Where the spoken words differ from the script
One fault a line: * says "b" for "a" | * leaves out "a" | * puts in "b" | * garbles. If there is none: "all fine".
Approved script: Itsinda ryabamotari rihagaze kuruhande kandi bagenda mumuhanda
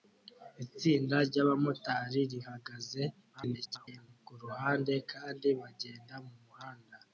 * garbles